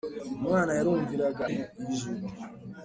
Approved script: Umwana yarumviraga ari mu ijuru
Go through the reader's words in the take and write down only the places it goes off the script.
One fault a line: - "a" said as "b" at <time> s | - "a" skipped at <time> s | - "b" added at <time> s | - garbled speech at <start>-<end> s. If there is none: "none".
- "ari" skipped at 1.4 s